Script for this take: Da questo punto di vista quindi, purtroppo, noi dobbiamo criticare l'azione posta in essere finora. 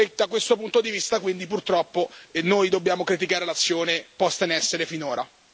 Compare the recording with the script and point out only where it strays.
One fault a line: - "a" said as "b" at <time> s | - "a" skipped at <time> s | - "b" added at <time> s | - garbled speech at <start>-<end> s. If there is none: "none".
none